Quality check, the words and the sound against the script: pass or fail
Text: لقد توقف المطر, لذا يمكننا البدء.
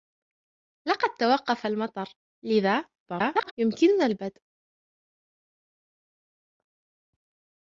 fail